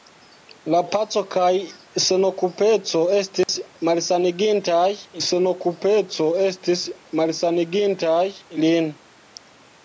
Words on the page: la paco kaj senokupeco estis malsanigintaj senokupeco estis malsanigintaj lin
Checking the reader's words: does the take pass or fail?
pass